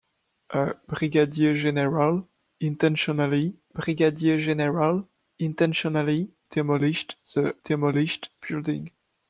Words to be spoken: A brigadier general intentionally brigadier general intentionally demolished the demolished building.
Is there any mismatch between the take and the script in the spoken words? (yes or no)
no